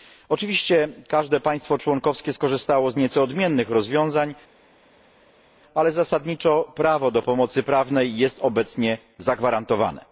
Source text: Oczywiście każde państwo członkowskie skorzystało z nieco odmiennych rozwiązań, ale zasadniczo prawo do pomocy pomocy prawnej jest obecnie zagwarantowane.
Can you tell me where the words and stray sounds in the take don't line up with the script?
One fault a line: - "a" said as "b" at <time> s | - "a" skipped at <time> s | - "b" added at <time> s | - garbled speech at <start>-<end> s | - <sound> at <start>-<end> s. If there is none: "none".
- "pomocy" skipped at 7.6 s